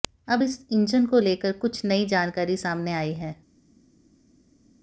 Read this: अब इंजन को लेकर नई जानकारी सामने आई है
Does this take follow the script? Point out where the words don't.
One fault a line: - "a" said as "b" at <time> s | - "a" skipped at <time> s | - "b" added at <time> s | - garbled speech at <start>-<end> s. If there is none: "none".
- "इस" added at 0.4 s
- "कुछ" added at 1.6 s